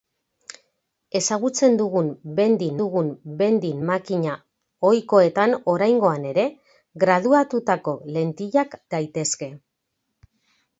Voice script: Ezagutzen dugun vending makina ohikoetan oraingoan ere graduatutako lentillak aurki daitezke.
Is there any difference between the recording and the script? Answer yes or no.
yes